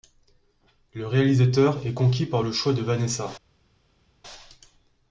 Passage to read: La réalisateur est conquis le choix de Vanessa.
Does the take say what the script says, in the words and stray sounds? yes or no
no